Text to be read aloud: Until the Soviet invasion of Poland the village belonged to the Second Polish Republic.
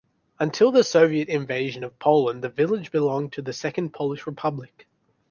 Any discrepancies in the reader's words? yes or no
no